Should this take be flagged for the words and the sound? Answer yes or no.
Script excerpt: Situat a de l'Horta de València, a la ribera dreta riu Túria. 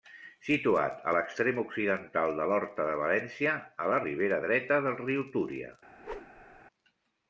yes